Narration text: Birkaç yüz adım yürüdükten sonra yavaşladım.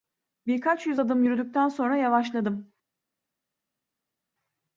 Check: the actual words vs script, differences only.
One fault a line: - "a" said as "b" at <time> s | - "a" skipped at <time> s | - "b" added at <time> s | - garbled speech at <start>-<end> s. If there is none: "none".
none